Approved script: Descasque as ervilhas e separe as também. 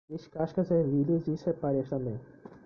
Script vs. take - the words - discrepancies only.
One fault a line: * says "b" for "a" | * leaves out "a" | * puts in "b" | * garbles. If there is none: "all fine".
all fine